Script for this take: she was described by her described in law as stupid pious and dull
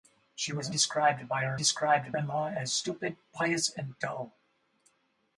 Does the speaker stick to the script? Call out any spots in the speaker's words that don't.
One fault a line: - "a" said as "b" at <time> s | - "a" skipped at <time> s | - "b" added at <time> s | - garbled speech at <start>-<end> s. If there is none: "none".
none